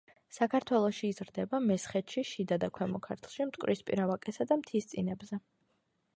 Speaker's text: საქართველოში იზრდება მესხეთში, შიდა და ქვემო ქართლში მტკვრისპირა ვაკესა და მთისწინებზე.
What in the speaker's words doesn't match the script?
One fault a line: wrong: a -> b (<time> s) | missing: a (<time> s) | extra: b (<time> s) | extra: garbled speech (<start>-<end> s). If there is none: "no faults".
no faults